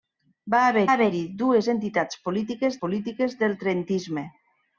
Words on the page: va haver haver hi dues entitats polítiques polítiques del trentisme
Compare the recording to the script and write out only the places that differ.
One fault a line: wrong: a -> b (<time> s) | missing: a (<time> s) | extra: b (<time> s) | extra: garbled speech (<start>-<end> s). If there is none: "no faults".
no faults